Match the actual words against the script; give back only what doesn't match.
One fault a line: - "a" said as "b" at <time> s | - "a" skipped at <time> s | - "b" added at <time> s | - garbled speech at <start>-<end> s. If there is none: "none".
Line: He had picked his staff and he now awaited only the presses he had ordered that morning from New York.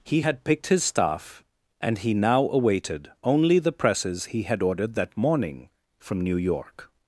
none